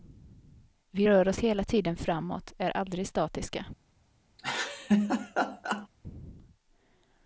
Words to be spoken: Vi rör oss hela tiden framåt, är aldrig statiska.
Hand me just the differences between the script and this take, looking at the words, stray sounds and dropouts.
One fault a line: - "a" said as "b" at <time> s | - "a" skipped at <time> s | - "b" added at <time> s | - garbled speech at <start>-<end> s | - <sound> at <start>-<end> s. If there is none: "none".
- laugh at 4.4-5.9 s